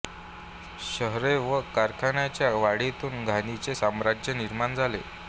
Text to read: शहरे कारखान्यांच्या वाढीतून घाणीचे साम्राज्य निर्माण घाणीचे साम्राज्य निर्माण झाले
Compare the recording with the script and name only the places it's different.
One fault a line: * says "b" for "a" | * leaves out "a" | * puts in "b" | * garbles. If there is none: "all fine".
* puts in "व"
* leaves out "घाणीचे साम्राज्य निर्माण"